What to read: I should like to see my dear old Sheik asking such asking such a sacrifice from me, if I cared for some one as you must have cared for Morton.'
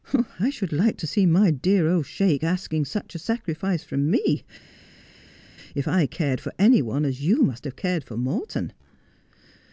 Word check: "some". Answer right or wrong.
wrong